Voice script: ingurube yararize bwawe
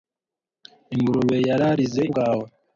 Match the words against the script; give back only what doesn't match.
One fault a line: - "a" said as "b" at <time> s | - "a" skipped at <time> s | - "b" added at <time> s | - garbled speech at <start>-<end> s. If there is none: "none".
none